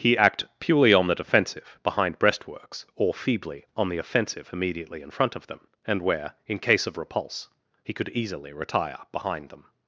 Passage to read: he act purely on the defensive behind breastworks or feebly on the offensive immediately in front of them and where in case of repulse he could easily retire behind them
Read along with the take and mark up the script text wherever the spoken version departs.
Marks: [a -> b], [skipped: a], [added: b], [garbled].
he act purely on the defensive behind breastworks or feebly on the offensive immediately in front of them and where in case of repulse he could easily retire behind them